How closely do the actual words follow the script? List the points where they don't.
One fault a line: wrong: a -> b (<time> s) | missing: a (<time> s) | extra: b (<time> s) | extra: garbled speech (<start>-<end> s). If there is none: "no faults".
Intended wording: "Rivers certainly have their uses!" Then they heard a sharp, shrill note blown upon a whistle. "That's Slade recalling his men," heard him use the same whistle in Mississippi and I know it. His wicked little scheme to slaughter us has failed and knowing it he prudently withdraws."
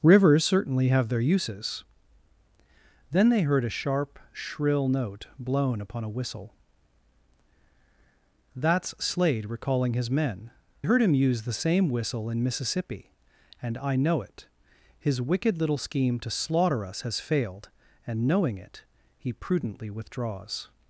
no faults